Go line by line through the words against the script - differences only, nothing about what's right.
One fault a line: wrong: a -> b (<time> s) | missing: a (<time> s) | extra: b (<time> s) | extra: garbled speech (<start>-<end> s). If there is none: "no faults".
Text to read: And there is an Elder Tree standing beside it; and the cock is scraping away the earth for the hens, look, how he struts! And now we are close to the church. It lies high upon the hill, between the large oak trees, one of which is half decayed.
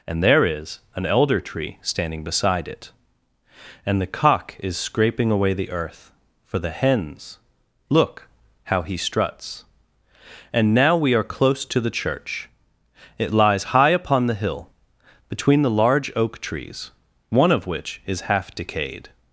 no faults